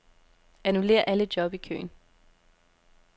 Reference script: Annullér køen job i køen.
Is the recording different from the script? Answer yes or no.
yes